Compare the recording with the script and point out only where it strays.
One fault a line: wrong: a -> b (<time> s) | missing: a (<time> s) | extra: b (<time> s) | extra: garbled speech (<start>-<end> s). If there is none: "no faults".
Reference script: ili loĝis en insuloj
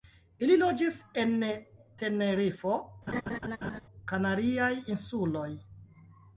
extra: tenerifo kanariaj (2.0 s)